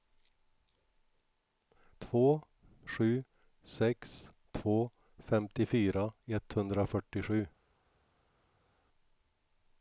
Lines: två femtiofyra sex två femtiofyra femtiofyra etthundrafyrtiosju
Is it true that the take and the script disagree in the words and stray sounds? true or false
true